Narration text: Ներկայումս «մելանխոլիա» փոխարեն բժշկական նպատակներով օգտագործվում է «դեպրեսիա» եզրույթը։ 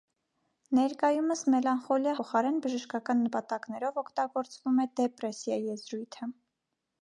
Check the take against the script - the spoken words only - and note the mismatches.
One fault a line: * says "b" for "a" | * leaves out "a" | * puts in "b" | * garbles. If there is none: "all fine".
all fine